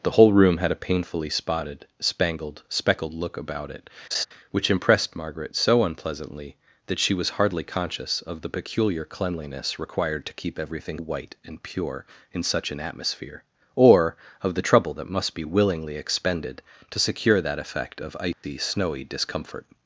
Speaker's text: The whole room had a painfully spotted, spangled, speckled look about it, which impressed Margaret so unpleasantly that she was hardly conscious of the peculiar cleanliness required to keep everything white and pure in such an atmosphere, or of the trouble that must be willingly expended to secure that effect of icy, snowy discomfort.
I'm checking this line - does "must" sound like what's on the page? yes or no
yes